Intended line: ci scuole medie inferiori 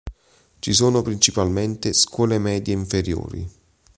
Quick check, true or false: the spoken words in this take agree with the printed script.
false